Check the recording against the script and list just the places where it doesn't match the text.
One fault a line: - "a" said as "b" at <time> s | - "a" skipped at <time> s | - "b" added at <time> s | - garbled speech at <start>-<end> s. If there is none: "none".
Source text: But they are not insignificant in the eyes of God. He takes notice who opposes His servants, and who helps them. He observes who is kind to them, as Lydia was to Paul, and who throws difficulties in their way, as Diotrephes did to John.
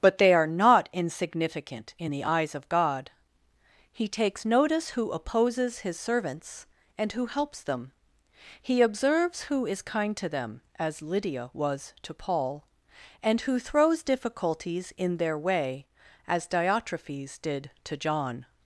none